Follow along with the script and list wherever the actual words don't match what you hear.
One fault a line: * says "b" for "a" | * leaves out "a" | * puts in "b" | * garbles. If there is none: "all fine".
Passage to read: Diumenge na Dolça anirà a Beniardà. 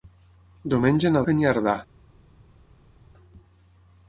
* leaves out "Dolça anirà"